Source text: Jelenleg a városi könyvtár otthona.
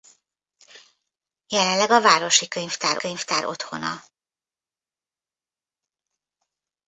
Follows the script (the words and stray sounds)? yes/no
no